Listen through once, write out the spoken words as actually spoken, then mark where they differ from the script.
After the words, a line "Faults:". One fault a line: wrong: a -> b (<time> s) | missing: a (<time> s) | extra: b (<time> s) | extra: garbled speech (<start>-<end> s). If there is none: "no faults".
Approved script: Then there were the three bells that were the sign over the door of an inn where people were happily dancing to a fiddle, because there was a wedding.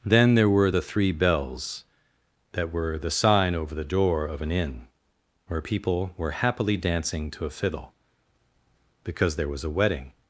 Then there were the three bells that were the sign over the door of an inn where people were happily dancing to a fiddle, because there was a wedding.
Faults:
no faults